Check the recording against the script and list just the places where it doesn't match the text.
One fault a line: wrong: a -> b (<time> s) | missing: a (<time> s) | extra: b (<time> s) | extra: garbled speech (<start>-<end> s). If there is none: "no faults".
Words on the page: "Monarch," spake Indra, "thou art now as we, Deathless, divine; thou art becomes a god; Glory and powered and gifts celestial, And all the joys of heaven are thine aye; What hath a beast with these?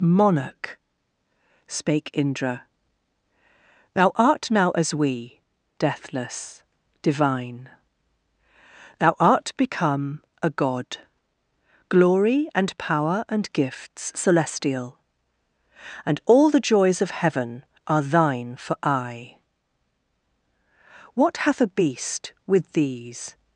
wrong: becomes -> become (9.6 s)
wrong: powered -> power (12.8 s)
extra: for (18.5 s)